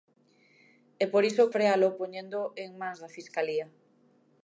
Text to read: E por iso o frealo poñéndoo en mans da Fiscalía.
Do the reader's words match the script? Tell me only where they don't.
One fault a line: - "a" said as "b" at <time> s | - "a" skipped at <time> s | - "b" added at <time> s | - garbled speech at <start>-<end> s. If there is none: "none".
none